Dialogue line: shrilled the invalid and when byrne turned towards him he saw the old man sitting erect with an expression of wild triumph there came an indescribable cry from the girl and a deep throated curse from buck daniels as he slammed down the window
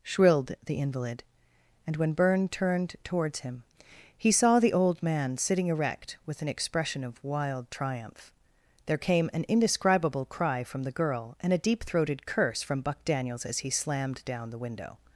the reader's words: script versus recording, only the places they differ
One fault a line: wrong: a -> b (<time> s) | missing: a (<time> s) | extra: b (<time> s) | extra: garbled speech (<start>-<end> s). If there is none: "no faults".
no faults